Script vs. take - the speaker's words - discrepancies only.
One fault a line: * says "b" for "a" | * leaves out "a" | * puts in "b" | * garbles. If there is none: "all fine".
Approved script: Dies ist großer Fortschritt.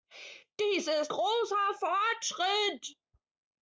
all fine